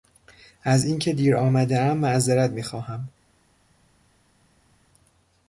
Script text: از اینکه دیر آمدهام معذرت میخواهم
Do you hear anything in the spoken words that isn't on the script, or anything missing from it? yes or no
no